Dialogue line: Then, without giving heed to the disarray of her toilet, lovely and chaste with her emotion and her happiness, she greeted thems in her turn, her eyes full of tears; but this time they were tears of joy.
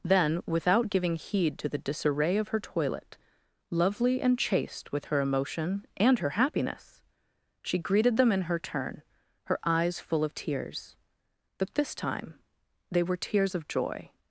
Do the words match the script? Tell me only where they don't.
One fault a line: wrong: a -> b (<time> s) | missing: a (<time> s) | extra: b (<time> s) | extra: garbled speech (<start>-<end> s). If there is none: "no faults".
wrong: thems -> them (8.2 s)